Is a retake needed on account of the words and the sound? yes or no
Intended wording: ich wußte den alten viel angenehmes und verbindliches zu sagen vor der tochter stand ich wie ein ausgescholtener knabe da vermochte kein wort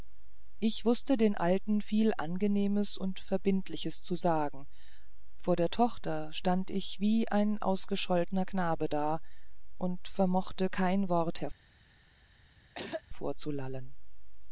yes